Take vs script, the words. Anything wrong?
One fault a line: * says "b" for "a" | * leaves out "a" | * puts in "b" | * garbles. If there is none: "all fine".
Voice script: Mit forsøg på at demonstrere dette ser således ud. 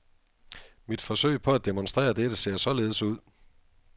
all fine